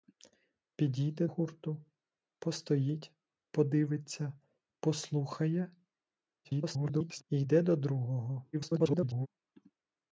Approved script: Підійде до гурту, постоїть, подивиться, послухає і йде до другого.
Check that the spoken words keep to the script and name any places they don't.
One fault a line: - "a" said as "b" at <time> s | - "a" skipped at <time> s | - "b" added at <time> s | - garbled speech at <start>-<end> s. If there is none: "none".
- "до" skipped at 1.3 s
- garbled speech at 6.4-7.2 s
- garbled speech at 8.5-9.3 s